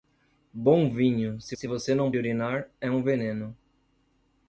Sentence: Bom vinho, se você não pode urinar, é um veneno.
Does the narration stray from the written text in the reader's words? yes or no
yes